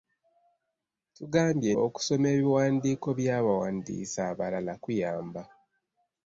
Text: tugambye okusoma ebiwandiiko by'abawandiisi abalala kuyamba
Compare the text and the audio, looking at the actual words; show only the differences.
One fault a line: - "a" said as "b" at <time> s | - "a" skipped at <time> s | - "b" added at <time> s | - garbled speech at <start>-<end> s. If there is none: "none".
none